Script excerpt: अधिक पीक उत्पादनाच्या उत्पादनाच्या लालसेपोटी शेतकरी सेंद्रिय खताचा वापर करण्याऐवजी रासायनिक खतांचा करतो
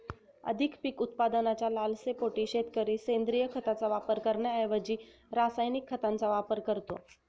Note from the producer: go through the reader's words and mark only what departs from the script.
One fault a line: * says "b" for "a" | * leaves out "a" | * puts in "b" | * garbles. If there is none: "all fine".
* leaves out "उत्पादनाच्या"
* puts in "वापर"